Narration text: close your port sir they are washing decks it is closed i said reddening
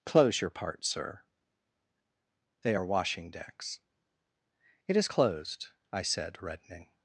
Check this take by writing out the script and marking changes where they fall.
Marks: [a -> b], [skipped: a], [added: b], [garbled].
close your [port -> part] sir they are washing decks it is closed i said reddening